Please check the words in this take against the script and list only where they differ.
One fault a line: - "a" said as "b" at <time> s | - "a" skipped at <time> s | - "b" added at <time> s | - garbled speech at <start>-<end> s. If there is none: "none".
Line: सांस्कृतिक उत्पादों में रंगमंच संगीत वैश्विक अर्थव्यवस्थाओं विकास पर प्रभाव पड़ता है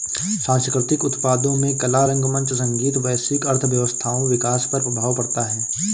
- "कला" added at 1.8 s